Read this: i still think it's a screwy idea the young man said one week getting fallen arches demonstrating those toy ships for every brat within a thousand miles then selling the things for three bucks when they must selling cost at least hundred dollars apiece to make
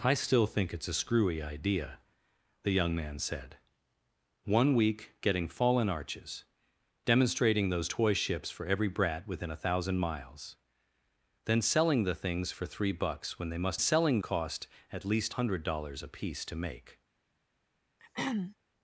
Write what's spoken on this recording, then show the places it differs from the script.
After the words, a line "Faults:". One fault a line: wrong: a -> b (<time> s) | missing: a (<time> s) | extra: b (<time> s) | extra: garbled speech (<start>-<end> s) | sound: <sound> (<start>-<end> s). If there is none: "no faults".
i still think it's a screwy idea the young man said one week getting fallen arches demonstrating those toy ships for every brat within a thousand miles then selling the things for three bucks when they must selling cost at least hundred dollars apiece to make
Faults:
sound: throat clearing (18.0-18.6 s)